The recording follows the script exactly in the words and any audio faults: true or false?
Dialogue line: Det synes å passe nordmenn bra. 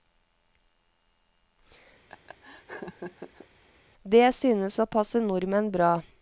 false